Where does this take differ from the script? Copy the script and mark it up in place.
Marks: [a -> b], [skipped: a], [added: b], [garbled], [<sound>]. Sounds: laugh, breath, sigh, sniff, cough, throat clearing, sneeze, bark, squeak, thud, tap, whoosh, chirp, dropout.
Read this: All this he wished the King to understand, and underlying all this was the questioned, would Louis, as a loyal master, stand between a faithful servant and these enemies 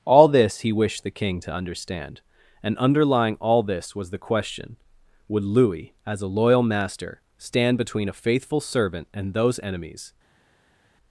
All this he wished the King to understand, and underlying all this was the [questioned, -> question] would Louis, as a loyal master, stand between a faithful servant and [these -> those] enemies